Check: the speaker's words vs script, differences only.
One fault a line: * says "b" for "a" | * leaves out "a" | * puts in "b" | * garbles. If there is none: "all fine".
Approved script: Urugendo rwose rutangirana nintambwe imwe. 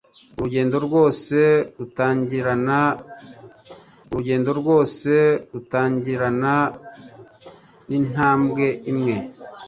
* puts in "urugendo rwose rutangirana"